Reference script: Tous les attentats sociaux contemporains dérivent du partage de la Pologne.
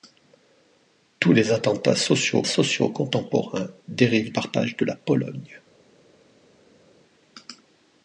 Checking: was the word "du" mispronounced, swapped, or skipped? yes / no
yes